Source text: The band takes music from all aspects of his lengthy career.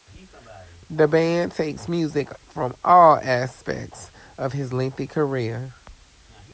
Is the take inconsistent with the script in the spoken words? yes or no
no